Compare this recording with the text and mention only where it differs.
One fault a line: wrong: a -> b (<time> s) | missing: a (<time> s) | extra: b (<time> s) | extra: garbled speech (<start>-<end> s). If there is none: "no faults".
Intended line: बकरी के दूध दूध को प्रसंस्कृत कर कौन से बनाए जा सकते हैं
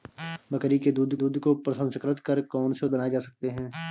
no faults